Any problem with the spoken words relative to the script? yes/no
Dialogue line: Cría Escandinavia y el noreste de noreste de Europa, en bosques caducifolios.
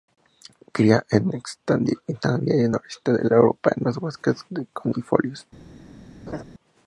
yes